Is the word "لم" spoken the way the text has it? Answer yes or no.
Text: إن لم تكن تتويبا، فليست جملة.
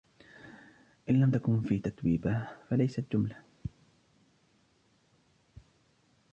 yes